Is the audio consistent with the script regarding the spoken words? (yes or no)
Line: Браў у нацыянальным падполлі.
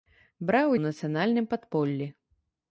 yes